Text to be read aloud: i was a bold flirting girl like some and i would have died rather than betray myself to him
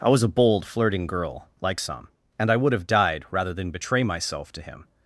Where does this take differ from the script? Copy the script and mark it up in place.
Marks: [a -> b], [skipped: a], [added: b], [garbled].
i was a bold flirting girl like some and i would have died rather than betray myself to him